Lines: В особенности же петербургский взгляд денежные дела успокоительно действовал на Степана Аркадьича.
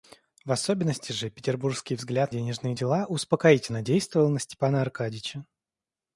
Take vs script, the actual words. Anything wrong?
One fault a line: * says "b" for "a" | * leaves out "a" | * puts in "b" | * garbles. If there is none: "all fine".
all fine